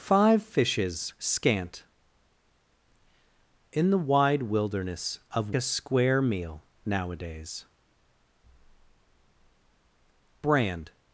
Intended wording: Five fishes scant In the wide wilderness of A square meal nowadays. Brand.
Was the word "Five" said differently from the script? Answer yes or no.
no